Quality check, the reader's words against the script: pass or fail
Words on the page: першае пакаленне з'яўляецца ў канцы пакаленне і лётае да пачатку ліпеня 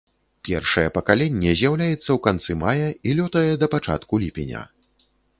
fail